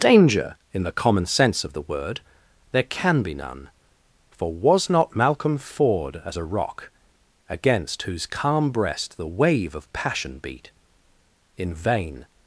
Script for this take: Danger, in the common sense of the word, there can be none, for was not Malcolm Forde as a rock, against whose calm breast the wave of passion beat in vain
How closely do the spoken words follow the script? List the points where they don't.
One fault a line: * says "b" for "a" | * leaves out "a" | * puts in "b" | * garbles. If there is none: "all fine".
all fine